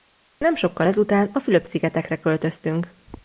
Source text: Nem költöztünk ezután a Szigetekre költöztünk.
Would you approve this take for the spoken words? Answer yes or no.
no